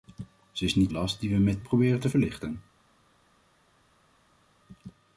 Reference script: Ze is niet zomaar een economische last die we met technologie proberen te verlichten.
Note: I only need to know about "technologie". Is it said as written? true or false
false